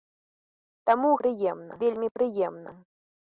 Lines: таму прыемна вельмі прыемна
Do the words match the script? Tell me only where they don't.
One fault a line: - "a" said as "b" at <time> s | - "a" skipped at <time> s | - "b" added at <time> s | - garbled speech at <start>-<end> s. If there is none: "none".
none